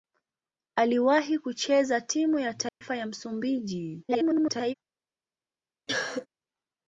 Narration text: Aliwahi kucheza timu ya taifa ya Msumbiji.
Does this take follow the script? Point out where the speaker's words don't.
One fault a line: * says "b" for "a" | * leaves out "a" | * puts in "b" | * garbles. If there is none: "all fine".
* garbles